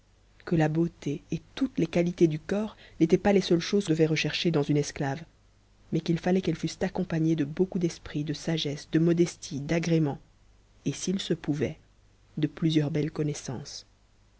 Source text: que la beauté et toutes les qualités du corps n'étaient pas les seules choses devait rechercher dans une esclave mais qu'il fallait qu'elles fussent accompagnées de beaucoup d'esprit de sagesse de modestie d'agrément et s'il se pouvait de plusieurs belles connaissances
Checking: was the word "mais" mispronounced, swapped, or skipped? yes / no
no